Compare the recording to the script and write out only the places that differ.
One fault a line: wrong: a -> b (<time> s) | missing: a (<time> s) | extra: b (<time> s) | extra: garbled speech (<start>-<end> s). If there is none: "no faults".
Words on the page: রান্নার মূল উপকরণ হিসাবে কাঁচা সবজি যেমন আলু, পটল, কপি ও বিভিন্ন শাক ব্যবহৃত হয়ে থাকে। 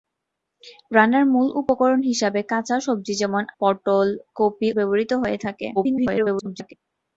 missing: আলু (3.4 s)
missing: ও বিভিন্ন শাক (4.7 s)
extra: garbled speech (5.8-6.7 s)